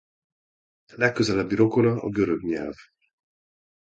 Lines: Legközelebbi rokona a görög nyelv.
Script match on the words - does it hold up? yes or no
yes